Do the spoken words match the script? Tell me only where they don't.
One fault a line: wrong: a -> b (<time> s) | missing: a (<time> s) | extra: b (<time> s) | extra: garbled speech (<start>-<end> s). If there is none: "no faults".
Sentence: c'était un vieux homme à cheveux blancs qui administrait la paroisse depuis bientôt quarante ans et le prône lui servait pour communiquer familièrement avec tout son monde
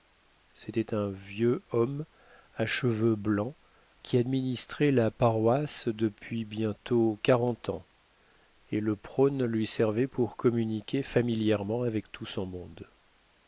no faults